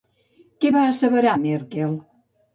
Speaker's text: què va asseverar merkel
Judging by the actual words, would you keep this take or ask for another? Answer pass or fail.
pass